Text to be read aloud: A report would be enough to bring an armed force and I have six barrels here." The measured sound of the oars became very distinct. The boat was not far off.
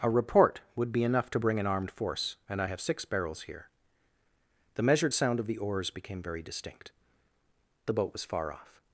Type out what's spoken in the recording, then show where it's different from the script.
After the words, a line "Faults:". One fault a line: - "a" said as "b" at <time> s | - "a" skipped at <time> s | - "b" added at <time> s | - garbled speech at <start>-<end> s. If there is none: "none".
A report would be enough to bring an armed force and I have six barrels here." The measured sound of the oars became very distinct. The boat was far off.
Faults:
- "not" skipped at 8.2 s